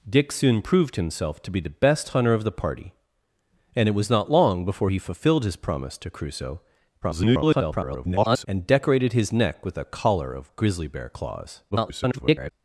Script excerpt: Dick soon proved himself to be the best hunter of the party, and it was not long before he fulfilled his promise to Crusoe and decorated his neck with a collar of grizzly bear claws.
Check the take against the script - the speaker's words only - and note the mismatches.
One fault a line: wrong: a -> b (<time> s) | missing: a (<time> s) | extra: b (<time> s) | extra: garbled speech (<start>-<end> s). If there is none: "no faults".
extra: garbled speech (7.0-8.5 s)
extra: garbled speech (11.7-12.5 s)